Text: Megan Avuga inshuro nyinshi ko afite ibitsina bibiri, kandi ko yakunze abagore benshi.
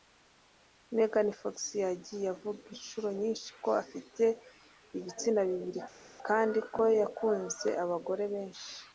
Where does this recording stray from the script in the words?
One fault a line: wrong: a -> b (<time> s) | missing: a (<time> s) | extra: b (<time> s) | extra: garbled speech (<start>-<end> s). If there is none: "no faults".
extra: Fox yagiye (1.4 s)